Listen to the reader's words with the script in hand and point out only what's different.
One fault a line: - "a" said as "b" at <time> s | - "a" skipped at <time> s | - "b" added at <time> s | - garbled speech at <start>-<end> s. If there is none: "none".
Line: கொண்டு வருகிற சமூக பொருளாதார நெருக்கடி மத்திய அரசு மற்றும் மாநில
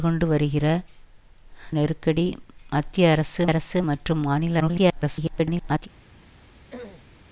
- "சமூக பொருளாதார" skipped at 0.7 s
- "அரசு" added at 3.5 s
- garbled speech at 4.6-5.9 s